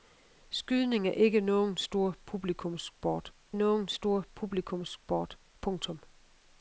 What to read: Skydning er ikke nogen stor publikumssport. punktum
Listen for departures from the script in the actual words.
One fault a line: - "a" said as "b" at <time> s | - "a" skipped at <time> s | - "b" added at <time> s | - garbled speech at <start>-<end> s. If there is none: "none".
- "nogen stor publikumssport" added at 3.5 s